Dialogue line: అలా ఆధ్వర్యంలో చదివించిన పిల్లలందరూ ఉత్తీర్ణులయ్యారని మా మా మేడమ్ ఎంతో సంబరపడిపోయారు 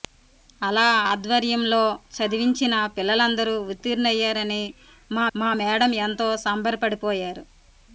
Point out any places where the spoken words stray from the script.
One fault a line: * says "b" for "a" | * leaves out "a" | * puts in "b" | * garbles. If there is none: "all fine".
all fine